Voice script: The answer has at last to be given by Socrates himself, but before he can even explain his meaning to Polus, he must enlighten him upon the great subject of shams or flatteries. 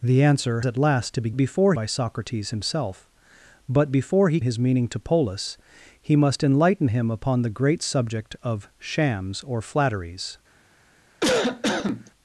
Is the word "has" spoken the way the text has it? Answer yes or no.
no